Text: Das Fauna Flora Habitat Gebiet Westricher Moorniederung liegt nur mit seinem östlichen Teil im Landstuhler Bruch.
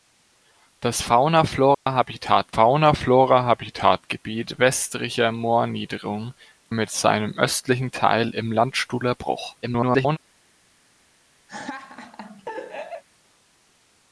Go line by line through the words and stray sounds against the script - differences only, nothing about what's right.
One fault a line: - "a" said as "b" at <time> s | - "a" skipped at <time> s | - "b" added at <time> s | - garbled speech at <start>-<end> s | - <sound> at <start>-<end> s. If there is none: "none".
- dropout at 1.7-1.9 s
- "Fauna Flora Habitat" added at 2.5 s
- "liegt nur" skipped at 6.3 s
- garbled speech at 9.6-10.2 s
- laugh at 11.5-13.0 s